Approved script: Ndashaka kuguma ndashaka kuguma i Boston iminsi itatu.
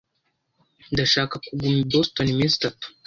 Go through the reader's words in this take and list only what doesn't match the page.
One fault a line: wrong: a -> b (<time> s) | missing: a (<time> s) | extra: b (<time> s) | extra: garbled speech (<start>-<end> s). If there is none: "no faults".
missing: ndashaka kuguma (1.8 s)